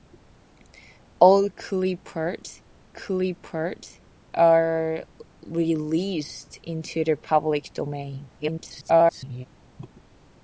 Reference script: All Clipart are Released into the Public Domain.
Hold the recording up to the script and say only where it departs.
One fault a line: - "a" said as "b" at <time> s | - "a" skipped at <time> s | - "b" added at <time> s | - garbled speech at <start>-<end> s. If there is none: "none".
- "Clipart" added at 2.9 s
- garbled speech at 8.4-9.5 s